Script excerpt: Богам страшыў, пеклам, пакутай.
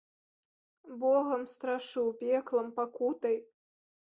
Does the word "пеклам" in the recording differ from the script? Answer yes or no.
no